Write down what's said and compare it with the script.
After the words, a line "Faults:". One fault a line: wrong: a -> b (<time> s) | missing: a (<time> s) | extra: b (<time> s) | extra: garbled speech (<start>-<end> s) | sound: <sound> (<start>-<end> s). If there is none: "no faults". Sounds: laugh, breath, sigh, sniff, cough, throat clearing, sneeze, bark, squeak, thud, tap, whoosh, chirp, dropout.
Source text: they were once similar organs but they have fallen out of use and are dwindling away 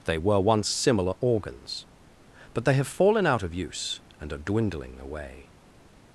they were once similar organs but they have fallen out of use and are dwindling away
Faults:
no faults